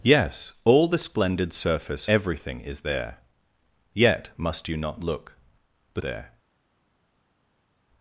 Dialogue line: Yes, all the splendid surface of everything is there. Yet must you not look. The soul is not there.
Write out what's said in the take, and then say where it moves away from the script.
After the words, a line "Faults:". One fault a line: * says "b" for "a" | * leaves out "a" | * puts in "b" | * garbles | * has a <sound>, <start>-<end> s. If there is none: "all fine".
Yes, all the splendid surface everything is there. Yet must you not look. The there.
Faults:
* leaves out "of"
* leaves out "soul is not"